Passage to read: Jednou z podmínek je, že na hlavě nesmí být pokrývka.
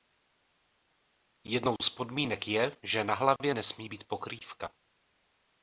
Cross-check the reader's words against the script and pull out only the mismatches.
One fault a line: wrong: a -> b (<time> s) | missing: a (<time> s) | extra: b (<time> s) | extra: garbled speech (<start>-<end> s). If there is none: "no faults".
no faults